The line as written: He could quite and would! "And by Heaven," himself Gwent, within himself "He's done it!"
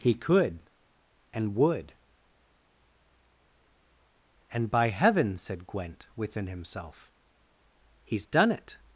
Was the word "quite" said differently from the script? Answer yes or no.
yes